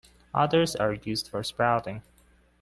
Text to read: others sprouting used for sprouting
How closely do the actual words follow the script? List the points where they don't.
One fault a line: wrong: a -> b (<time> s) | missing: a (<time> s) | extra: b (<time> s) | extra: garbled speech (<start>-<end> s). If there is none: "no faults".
wrong: sprouting -> are (0.8 s)